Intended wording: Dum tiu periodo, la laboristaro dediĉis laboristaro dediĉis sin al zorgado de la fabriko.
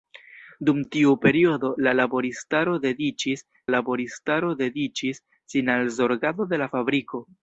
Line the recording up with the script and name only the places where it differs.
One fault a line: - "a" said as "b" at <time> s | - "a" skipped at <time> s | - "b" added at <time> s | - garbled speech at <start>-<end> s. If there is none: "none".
none